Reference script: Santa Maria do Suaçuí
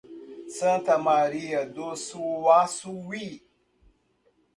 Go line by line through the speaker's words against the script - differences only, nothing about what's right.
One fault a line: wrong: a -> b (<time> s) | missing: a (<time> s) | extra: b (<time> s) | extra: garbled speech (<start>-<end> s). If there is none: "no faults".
no faults